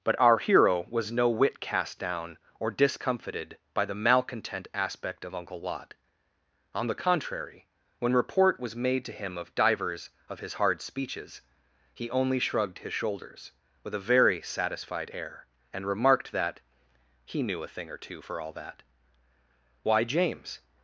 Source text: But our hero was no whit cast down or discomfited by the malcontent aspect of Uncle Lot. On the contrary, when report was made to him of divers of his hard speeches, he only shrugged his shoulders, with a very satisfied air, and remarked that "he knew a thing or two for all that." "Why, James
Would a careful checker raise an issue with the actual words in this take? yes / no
no